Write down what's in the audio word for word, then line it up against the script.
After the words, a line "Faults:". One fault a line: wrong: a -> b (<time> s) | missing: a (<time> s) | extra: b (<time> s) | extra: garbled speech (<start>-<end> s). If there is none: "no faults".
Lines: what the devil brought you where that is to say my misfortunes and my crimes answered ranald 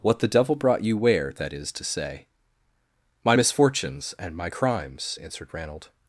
what the devil brought you where that is to say my misfortunes and my crimes answered ranald
Faults:
no faults